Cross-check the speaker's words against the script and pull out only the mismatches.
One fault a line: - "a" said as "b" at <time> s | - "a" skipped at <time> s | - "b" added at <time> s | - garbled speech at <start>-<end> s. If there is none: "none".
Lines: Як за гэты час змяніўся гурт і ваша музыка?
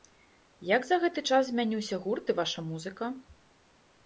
none